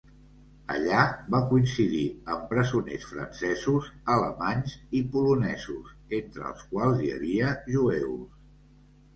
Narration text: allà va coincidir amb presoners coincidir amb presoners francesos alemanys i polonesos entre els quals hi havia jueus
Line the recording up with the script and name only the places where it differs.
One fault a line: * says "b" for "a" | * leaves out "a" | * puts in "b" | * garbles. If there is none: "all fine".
* leaves out "coincidir amb presoners"